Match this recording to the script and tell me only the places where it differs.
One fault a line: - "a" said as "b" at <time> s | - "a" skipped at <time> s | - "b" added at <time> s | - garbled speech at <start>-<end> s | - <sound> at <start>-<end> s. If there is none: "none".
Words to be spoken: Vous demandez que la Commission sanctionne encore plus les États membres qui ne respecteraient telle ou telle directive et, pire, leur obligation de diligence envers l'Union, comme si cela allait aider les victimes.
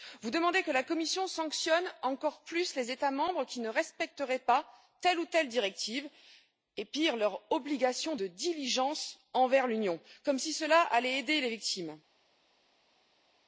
- "pas" added at 4.4 s